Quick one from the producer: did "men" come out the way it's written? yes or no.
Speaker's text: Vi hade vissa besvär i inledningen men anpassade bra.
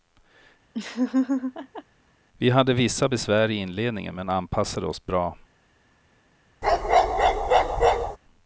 yes